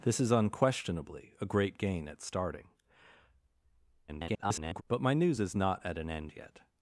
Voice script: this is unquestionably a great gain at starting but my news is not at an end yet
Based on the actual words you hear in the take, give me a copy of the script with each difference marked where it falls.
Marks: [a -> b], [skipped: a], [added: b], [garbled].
this is unquestionably a great gain at starting [garbled] but my news is not at an end yet